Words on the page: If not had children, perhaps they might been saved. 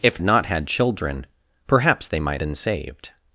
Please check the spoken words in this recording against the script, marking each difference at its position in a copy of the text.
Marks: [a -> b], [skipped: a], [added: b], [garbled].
If not had children, perhaps they might been saved.